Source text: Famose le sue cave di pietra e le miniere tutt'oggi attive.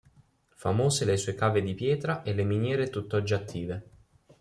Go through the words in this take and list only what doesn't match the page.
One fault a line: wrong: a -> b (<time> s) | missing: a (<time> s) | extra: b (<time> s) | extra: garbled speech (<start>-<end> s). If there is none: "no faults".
no faults